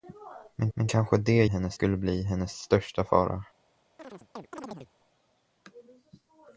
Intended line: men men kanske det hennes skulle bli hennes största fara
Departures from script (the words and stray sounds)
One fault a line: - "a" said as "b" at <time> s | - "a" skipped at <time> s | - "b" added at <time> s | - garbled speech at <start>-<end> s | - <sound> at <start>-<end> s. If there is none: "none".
- chirp at 4.0-4.9 s